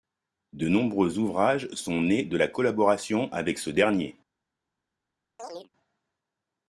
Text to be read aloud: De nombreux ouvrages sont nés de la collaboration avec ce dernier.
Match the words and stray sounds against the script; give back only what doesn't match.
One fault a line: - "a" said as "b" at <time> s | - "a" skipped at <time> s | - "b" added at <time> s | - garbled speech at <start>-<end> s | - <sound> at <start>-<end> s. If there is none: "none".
- chirp at 5.4-5.7 s